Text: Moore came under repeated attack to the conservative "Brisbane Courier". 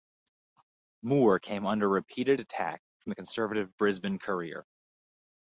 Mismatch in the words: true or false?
true